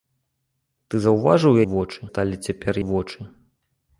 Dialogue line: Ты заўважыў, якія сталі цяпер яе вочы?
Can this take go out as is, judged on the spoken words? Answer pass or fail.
fail